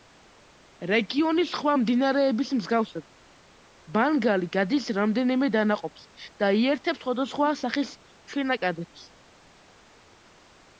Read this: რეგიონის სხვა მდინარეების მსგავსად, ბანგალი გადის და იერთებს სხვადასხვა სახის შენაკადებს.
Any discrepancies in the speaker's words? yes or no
yes